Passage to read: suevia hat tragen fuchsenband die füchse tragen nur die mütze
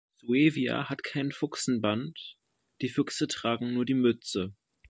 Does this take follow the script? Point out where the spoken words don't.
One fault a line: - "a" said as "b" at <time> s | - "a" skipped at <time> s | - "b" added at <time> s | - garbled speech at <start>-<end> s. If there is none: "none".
- "tragen" said as "kein" at 1.0 s